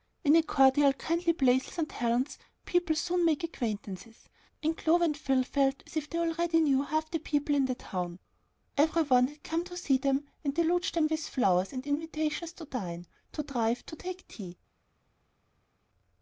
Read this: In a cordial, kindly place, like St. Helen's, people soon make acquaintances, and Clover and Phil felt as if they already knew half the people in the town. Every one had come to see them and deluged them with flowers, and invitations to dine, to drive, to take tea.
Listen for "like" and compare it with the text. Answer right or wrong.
wrong